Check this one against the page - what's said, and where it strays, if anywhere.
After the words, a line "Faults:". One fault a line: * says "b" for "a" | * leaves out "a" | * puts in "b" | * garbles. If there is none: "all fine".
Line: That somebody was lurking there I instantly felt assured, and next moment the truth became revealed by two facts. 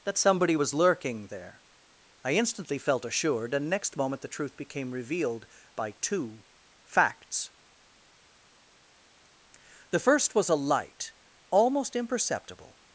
That somebody was lurking there I instantly felt assured, and next moment the truth became revealed by two facts. The first was a light, almost imperceptible
Faults:
* puts in "The first was a light almost imperceptible"